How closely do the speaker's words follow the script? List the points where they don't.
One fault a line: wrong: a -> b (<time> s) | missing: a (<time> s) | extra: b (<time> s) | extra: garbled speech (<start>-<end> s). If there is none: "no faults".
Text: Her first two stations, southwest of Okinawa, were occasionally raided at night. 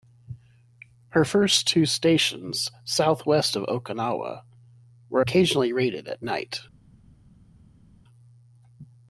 no faults